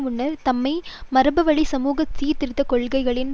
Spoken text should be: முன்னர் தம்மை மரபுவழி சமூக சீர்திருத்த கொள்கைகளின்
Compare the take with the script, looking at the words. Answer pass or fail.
pass